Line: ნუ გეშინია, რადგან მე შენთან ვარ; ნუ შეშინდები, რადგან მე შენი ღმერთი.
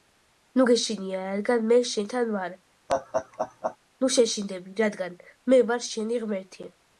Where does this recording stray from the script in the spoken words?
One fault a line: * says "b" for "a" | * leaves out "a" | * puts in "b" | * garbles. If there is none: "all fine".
* puts in "ვარ"